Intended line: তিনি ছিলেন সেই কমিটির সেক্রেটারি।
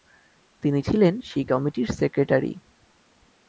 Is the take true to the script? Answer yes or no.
yes